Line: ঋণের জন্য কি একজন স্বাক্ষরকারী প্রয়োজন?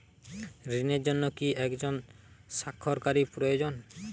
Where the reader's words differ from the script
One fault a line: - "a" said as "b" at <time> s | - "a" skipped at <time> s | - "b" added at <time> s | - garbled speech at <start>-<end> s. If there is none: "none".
none